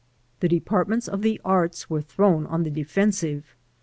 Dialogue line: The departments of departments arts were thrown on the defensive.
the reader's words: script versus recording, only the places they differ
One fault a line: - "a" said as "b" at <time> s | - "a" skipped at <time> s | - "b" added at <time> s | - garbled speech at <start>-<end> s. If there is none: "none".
- "departments" said as "the" at 1.2 s